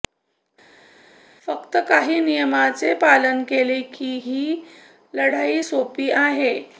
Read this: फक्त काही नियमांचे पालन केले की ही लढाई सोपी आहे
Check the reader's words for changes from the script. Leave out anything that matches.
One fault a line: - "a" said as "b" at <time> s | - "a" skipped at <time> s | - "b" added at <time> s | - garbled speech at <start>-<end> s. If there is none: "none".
none